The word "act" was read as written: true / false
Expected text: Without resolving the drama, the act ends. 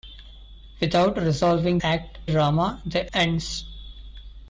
false